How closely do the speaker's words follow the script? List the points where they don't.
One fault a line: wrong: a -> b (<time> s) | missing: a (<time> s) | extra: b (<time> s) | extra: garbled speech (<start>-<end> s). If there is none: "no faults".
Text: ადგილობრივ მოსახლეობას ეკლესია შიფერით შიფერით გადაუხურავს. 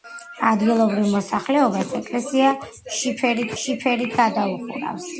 no faults